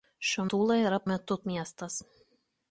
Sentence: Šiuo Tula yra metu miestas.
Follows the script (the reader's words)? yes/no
yes